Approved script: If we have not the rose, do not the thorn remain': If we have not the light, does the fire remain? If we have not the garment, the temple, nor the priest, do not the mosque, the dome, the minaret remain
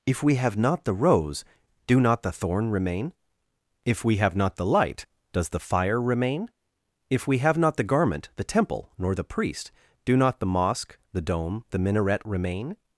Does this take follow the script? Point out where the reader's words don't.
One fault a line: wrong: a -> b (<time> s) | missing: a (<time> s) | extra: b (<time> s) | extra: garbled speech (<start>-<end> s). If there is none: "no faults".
no faults